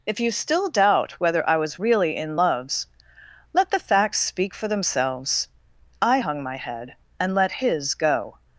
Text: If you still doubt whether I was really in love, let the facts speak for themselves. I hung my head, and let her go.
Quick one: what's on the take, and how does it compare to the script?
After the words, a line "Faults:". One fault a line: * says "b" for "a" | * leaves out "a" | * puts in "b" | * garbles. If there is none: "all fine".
If you still doubt whether I was really in loves, let the facts speak for themselves. I hung my head, and let his go.
Faults:
* says "loves" for "love"
* says "his" for "her"